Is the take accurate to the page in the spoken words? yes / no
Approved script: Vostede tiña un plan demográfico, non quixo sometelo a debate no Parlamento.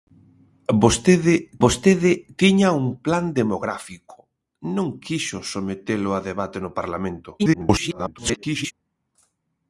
no